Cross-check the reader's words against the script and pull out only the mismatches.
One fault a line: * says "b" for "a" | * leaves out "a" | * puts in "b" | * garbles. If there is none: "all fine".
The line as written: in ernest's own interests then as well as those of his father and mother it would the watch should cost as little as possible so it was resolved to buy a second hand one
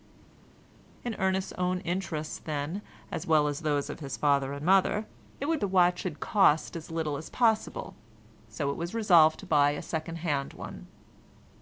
all fine